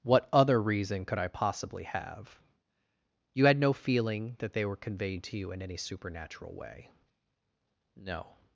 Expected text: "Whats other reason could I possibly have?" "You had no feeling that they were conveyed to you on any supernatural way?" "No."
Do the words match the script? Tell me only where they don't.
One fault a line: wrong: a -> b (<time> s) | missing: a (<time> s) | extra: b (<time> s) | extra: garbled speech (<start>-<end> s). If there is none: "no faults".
wrong: Whats -> What (0.0 s)
wrong: on -> in (5.5 s)